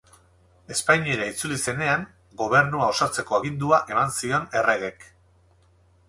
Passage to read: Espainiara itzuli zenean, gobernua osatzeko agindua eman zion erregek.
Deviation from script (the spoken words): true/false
false